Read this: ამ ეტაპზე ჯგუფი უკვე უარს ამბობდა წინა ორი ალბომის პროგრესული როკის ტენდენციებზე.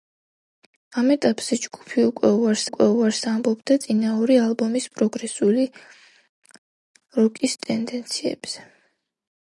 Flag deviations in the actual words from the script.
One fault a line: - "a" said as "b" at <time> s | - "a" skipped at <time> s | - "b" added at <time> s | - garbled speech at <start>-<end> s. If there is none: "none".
- "უკვე უარს" added at 2.7 s